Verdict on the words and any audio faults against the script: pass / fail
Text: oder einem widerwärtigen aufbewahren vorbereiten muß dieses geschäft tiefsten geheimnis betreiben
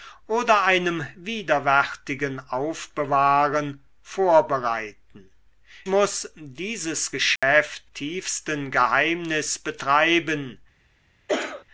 fail